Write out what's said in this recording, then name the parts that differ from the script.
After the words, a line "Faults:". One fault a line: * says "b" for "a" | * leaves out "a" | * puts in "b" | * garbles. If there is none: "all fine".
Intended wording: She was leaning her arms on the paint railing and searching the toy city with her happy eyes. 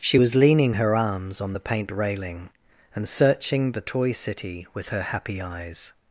She was leaning her arms on the paint railing and searching the toy city with her happy eyes.
Faults:
all fine